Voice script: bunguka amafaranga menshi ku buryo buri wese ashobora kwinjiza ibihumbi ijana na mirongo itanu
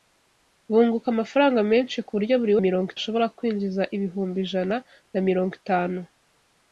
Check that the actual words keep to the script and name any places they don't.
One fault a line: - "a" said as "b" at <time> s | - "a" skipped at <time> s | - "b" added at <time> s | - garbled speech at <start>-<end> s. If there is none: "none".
- "wese" said as "mirongo" at 2.6 s